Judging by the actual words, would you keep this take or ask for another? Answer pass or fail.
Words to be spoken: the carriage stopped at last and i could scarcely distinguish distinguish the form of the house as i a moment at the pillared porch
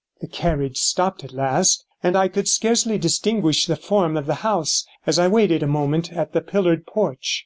fail